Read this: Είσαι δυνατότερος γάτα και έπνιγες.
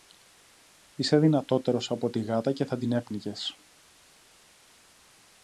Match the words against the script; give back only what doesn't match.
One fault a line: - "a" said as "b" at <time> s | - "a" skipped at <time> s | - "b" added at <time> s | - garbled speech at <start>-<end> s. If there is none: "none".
- "από τη" added at 1.9 s
- "θα την" added at 2.6 s